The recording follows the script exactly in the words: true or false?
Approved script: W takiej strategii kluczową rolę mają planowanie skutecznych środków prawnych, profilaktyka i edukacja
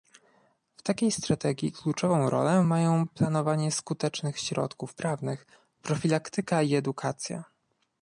true